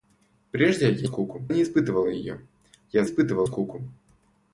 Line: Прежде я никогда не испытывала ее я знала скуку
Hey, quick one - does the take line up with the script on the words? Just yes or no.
no